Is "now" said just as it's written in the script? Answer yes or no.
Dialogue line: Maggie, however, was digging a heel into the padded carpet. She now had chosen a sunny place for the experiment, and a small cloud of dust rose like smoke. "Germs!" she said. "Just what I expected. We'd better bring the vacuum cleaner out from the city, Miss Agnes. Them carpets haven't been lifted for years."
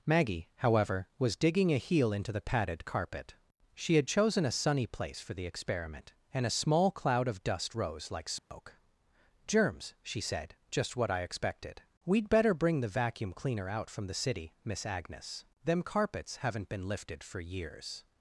no